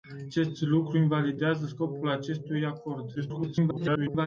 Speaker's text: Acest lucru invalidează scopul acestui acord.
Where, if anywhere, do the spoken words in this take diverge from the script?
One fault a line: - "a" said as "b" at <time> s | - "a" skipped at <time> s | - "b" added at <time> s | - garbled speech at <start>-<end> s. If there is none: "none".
- garbled speech at 3.1-4.3 s